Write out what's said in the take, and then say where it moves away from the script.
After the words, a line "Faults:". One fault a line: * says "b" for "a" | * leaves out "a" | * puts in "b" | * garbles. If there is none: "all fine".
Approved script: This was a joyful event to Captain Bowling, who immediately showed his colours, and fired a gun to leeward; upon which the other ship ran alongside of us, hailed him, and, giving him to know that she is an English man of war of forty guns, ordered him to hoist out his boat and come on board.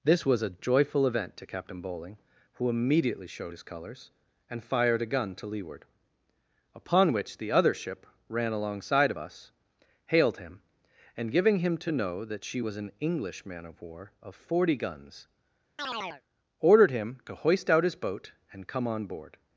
This was a joyful event to Captain Bowling, who immediately showed his colours, and fired a gun to leeward; upon which the other ship ran alongside of us, hailed him, and, giving him to know that she was an English man of war of forty guns, ordered him to hoist out his boat and come on board.
Faults:
* says "was" for "is"